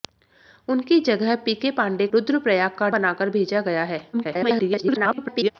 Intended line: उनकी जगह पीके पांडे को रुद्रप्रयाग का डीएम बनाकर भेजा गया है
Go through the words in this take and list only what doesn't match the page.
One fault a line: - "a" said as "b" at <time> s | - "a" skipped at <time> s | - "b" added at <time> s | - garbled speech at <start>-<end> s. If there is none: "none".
- "को" skipped at 2.1 s
- "डीएम" skipped at 2.9 s
- garbled speech at 4.1-5.5 s